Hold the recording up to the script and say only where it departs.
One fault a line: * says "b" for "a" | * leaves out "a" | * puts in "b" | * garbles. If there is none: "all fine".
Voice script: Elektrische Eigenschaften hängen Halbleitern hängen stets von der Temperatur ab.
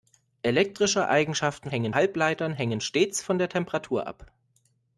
all fine